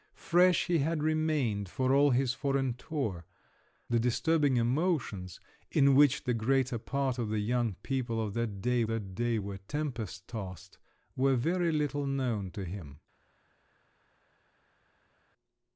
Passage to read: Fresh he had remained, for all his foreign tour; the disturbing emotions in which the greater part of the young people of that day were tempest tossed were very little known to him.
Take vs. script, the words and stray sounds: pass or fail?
fail